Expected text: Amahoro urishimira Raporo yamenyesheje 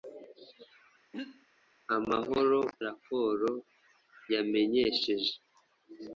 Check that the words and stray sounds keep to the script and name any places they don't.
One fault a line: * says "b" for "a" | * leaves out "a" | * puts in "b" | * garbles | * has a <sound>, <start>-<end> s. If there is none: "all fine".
* has a throat clearing, 1.1-1.5 s
* leaves out "urishimira"